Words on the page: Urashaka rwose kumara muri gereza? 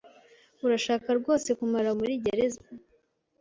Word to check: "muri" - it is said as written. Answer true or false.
true